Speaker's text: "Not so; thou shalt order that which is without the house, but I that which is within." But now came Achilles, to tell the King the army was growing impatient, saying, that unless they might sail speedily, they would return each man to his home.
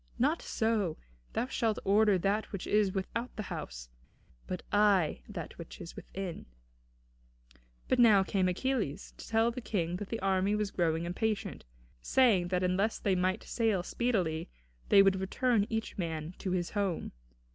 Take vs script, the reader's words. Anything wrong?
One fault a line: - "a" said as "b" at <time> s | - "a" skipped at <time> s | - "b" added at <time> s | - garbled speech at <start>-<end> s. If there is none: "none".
- "that" added at 10.0 s